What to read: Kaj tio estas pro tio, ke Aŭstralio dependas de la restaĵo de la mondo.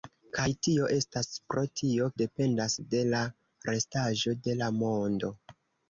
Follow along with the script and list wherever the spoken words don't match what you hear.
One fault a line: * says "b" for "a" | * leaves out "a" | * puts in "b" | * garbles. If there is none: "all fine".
* leaves out "ke Aŭstralio"